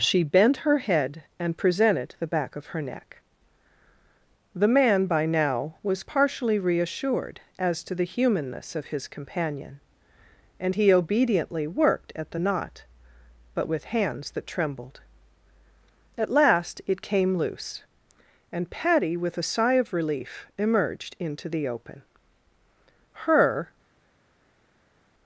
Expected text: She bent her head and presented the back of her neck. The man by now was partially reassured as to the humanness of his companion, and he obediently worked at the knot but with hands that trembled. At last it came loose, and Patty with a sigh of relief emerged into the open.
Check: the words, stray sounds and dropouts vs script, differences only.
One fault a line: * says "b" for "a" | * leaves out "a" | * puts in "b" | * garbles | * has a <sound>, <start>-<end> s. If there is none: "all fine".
* puts in "Her"